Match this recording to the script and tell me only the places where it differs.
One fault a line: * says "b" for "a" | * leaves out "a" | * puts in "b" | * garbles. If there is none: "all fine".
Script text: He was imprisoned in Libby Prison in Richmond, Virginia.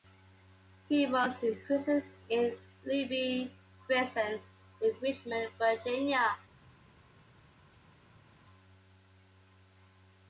all fine